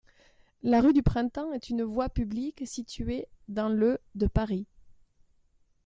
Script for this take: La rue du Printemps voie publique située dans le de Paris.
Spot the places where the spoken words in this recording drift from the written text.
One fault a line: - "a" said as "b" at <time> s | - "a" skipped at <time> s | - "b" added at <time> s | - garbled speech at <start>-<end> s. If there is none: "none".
- "est une" added at 1.5 s